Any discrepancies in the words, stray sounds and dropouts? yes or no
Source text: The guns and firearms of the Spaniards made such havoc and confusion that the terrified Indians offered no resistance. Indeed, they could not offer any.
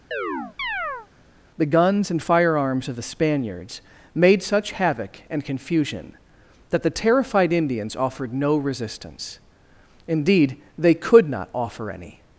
yes